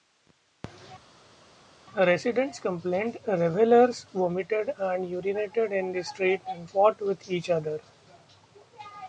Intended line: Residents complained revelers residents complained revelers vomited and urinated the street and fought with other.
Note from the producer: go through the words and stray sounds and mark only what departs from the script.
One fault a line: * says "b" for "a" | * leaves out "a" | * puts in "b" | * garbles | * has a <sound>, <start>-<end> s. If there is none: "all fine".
* leaves out "residents complained revelers"
* puts in "in"
* puts in "each"